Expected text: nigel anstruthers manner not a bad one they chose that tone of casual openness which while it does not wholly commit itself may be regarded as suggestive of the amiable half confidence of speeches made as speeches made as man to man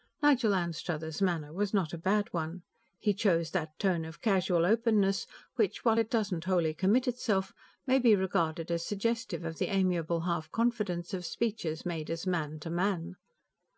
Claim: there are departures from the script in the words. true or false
true